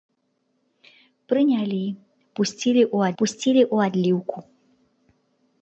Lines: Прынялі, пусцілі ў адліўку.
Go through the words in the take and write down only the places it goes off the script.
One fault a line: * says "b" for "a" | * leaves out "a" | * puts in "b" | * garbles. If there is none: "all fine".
* puts in "пусцілі ў"